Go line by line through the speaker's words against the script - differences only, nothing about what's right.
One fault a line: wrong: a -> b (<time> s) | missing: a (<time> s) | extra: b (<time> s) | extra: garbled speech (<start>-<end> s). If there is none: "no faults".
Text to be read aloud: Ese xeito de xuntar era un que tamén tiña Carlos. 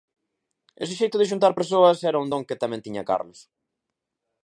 extra: persoas (1.6 s)
extra: don (2.3 s)